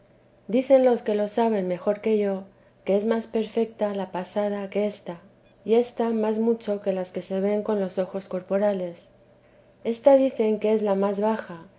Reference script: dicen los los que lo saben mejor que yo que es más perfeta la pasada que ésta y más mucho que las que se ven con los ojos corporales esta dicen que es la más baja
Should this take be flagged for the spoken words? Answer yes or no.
yes